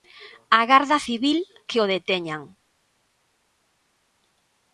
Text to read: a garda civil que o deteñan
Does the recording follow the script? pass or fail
pass